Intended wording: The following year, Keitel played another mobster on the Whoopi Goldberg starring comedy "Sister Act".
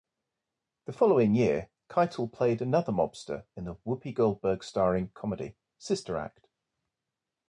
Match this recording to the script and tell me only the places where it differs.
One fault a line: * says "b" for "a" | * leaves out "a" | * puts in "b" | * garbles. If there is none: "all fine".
* says "in" for "on"